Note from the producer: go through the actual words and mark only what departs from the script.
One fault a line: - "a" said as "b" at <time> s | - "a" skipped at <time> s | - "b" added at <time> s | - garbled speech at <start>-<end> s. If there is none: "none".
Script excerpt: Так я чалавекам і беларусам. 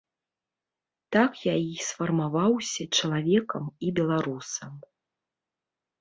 - "і сфармаваўся" added at 1.6 s